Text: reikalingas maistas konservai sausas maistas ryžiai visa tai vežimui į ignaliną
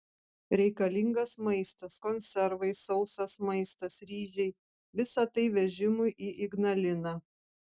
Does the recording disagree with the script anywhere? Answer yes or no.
no